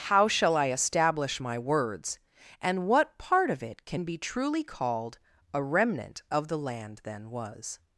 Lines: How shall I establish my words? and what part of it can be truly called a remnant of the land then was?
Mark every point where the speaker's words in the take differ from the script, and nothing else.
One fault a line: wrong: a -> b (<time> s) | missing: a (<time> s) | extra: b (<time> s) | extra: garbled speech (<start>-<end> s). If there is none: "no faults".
no faults